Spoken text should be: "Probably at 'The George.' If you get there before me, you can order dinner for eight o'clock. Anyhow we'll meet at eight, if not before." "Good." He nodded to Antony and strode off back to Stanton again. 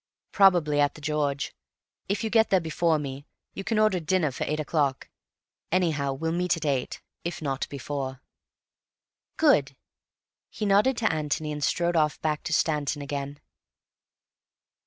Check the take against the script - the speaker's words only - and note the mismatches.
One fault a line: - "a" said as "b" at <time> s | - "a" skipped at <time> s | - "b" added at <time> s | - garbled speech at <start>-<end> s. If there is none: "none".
none